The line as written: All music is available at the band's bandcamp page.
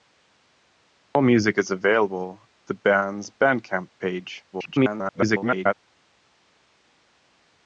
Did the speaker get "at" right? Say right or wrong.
wrong